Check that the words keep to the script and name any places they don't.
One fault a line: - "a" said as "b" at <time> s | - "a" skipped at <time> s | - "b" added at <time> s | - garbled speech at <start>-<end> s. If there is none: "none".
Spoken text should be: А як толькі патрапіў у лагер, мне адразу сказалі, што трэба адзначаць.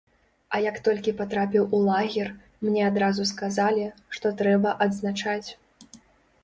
none